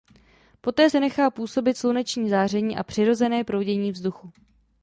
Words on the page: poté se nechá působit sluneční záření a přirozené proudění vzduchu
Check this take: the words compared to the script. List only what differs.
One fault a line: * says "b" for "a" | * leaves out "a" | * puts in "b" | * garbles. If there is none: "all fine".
all fine